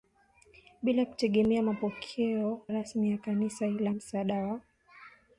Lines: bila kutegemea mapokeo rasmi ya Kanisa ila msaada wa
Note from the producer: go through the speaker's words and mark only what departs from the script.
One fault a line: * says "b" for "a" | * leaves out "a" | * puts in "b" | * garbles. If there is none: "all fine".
all fine